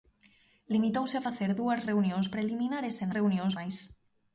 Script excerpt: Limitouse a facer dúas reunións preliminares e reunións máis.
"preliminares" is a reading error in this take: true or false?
false